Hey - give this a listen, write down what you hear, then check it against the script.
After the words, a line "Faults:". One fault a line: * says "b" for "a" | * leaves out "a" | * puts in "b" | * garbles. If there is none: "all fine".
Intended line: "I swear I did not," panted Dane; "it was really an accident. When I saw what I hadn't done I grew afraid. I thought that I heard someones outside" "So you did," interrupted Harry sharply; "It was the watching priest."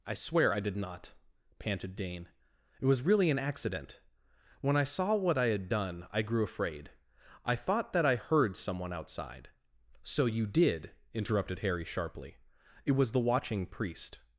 "I swear I did not," panted Dane; "it was really an accident. When I saw what I had done I grew afraid. I thought that I heard someone outside" "So you did," interrupted Harry sharply; "It was the watching priest."
Faults:
* says "had" for "hadn't"
* says "someone" for "someones"